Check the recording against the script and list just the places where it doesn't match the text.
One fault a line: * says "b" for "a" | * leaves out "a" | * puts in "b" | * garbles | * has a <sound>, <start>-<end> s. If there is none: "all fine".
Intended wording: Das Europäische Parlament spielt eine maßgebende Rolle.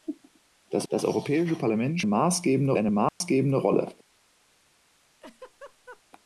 * puts in "das"
* says "maßgebende" for "spielt"
* has a dropout, 3.1-3.2 s
* has a laugh, 5.2-6.0 s